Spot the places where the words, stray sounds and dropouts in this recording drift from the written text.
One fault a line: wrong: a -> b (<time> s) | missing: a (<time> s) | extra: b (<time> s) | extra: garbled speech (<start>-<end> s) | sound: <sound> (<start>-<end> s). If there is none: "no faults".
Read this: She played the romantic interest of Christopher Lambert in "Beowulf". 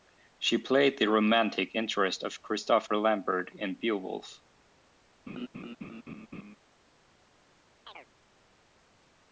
sound: laugh (5.3-6.6 s)
sound: chirp (7.9-8.1 s)